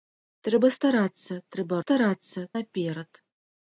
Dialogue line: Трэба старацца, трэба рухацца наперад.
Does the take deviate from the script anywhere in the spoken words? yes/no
yes